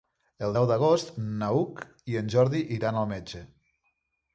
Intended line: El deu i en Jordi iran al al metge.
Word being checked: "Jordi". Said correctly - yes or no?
yes